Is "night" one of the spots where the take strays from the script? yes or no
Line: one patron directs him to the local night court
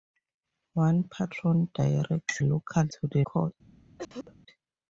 yes